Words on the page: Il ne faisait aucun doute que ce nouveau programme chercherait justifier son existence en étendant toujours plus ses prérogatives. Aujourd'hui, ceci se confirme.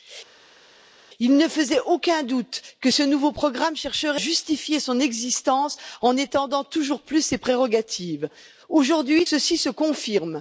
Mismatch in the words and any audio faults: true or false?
false